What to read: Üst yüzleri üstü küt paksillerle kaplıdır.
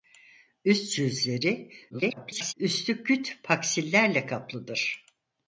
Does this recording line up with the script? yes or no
no